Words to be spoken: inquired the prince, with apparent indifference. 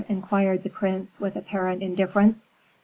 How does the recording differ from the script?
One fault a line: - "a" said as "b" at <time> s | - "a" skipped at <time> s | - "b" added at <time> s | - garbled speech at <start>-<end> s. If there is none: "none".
none